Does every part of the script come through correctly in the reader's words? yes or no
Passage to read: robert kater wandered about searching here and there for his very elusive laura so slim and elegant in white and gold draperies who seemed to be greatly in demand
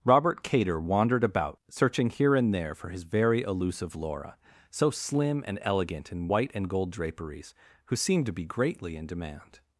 yes